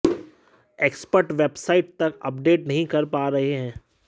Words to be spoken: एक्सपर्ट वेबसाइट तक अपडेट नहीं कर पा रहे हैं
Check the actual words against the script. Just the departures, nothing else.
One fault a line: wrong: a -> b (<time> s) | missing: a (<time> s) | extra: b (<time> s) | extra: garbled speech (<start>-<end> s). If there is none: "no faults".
no faults